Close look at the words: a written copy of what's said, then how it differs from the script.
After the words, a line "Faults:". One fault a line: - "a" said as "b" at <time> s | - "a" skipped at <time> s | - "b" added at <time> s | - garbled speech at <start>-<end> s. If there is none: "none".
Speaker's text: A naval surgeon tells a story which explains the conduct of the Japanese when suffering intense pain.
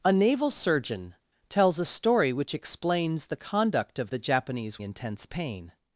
A naval surgeon tells a story which explains the conduct of the Japanese intense pain.
Faults:
- "when suffering" skipped at 4.8 s